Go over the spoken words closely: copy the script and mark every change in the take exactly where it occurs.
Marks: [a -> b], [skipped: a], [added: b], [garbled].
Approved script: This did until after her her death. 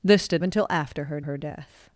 This did until after her her death.